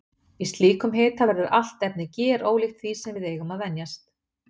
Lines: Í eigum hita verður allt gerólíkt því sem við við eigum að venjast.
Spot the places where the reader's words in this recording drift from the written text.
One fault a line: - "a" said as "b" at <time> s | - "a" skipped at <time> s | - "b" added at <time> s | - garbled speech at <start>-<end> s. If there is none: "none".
- "eigum" said as "slíkum" at 0.5 s
- "efni" added at 1.9 s
- "við" skipped at 3.3 s